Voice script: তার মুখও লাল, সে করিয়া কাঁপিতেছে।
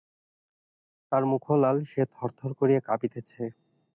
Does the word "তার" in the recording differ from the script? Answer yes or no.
no